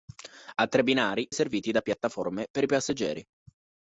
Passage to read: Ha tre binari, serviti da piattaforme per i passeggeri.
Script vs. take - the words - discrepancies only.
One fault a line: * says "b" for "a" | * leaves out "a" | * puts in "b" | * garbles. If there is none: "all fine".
all fine